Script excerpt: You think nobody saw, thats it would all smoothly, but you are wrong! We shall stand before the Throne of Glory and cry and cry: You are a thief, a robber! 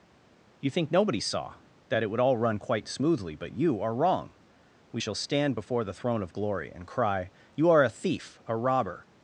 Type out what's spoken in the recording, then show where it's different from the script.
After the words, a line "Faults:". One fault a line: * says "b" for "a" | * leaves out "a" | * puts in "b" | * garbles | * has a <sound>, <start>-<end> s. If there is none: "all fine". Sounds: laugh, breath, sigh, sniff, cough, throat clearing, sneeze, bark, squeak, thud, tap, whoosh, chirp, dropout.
You think nobody saw, that it would all run quite smoothly, but you are wrong! We shall stand before the Throne of Glory and cry: You are a thief, a robber!
Faults:
* says "that" for "thats"
* puts in "run quite"
* leaves out "and cry"